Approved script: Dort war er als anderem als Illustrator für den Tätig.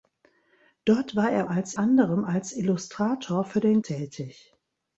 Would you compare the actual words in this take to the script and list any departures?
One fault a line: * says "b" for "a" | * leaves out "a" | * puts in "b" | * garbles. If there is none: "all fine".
all fine